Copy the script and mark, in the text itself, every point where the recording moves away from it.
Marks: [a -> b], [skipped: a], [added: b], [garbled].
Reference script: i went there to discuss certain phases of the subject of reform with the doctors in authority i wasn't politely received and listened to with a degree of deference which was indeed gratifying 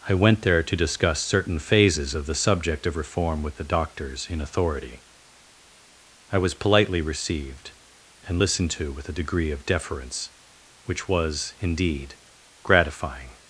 i went there to discuss certain phases of the subject of reform with the doctors in authority i [wasn't -> was] politely received and listened to with a degree of deference which was indeed gratifying